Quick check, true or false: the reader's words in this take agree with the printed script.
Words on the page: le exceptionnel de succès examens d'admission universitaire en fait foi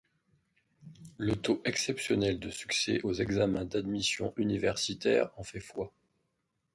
false